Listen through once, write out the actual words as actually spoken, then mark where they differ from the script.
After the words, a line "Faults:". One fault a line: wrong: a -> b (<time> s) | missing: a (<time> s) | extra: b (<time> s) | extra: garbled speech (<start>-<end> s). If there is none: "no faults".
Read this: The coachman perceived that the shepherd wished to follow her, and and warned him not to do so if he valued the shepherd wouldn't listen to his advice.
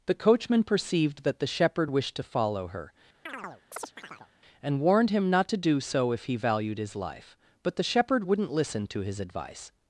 The coachman perceived that the shepherd wished to follow her, and warned him not to do so if he valued his life; but the shepherd wouldn't listen to his advice.
Faults:
missing: and (4.8 s)
extra: his life but (6.8 s)